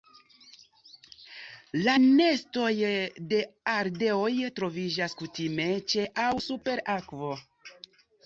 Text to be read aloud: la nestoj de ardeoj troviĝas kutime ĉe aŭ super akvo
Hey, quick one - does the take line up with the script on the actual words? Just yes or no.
yes